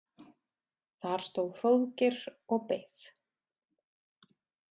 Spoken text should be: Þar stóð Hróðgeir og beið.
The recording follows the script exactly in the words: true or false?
true